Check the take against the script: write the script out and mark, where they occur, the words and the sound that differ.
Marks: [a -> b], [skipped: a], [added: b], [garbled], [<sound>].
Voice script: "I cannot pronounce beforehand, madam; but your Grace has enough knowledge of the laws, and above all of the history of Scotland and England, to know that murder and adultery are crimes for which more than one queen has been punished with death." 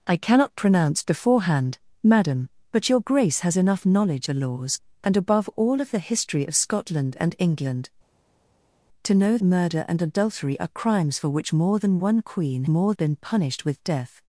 "I cannot pronounce beforehand, madam; but your Grace has enough knowledge [skipped: of] the laws, and above all of the history of Scotland and England, to know [skipped: that] murder and adultery are crimes for which more than one queen [has -> more] been punished with death."